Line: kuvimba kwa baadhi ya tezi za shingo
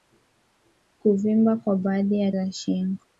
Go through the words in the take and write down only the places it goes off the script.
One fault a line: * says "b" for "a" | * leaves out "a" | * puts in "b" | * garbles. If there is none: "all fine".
* leaves out "tezi"